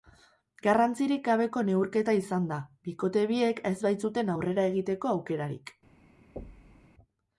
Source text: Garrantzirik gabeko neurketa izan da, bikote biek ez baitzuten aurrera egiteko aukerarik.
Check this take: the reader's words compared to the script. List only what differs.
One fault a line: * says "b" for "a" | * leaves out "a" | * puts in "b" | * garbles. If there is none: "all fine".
all fine